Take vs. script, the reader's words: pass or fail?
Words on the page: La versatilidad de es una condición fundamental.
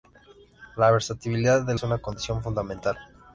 pass